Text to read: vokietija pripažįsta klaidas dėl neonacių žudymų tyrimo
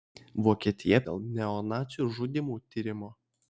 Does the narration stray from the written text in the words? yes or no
yes